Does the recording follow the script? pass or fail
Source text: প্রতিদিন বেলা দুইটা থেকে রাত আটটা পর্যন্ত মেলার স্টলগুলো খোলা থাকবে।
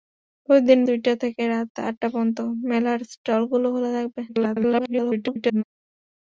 fail